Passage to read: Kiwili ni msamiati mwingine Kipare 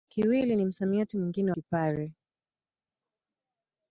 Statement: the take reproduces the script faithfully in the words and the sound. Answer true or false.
true